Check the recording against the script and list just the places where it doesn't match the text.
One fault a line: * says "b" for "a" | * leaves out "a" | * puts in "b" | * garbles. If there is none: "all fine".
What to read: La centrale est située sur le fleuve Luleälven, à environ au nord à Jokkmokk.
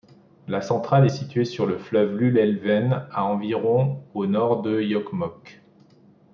* says "de" for "à"